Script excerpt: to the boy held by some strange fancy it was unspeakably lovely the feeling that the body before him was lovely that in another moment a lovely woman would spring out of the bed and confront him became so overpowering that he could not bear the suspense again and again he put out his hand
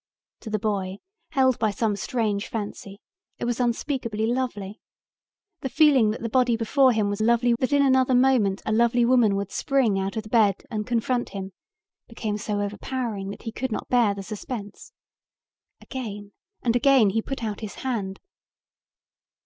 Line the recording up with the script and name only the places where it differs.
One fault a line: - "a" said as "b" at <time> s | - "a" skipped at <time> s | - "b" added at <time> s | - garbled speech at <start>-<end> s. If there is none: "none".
none